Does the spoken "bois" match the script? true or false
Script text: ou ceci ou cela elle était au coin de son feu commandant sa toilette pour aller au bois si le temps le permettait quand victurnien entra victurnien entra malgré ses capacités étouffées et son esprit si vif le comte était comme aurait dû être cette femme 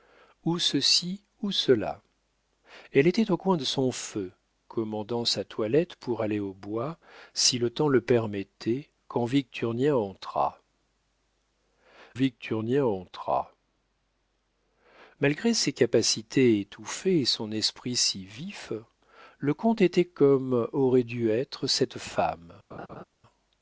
true